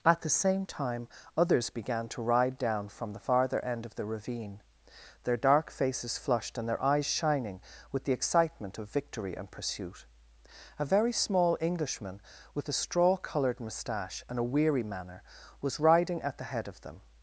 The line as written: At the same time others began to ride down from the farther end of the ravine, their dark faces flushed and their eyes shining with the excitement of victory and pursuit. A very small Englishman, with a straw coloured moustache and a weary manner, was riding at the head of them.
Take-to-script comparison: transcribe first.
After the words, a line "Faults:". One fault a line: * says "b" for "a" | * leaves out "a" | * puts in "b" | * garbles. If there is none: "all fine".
At the same time others began to ride down from the farther end of the ravine, their dark faces flushed and their eyes shining with the excitement of victory and pursuit. A very small Englishman, with a straw coloured moustache and a weary manner, was riding at the head of them.
Faults:
all fine